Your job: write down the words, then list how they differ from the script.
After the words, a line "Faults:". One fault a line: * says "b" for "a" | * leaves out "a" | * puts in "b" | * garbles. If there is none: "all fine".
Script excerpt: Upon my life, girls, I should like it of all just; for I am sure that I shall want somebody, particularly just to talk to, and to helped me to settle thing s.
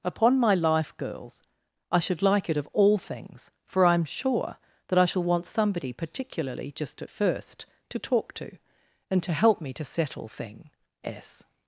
Upon my life, girls, I should like it of all things; for I am sure that I shall want somebody, particularly just at first, to talk to, and to help me to settle thing s.
Faults:
* says "things" for "just"
* puts in "at first"
* says "help" for "helped"